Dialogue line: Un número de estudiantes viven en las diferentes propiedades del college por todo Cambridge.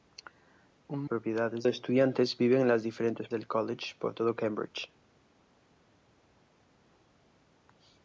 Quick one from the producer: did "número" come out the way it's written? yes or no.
no